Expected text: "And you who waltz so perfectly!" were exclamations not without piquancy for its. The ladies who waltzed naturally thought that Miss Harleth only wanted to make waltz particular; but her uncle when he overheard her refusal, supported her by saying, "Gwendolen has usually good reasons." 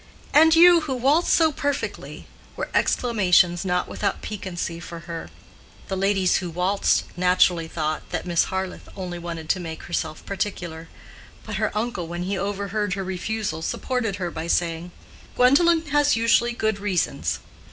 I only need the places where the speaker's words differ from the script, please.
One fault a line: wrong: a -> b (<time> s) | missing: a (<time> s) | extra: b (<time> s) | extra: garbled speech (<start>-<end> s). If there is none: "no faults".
wrong: its -> her (5.0 s)
wrong: waltz -> herself (9.8 s)